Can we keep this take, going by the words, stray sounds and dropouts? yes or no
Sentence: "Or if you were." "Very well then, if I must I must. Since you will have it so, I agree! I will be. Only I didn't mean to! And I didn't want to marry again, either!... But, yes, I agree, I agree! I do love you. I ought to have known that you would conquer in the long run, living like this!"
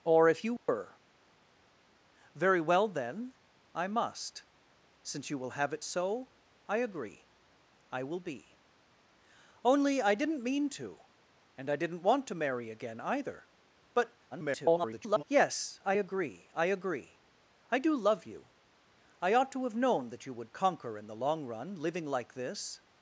no